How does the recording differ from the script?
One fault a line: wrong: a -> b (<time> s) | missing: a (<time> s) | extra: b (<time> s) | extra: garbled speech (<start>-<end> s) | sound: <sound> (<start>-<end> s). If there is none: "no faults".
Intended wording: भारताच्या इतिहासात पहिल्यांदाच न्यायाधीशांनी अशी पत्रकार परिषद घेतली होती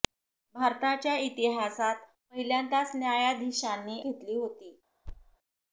missing: अशी पत्रकार परिषद (4.0 s)
sound: thud (5.0-5.4 s)